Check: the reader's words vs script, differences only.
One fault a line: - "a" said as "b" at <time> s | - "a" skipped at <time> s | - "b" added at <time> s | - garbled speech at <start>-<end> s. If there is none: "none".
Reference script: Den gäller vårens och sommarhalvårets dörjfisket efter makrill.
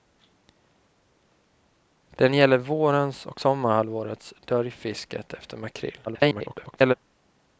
- garbled speech at 6.1-6.9 s